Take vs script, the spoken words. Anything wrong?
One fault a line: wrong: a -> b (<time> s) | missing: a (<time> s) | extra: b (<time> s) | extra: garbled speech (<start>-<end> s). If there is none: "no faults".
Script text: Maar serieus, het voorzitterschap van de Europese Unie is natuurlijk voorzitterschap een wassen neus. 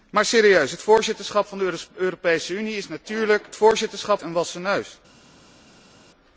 no faults